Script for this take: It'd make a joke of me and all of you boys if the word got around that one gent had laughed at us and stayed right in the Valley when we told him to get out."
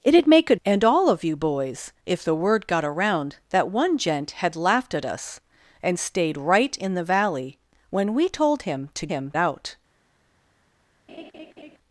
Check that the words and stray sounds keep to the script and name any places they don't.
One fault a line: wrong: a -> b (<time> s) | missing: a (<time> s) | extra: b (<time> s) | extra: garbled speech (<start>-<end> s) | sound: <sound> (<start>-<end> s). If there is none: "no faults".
missing: joke of me (0.6 s)
wrong: get -> him (9.1 s)
sound: laugh (11.1-11.8 s)